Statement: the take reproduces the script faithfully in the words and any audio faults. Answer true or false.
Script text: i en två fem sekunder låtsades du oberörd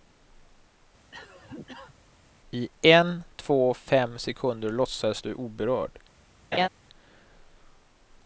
false